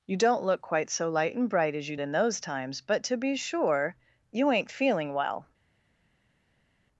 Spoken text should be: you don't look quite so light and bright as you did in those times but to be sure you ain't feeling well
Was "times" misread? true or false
false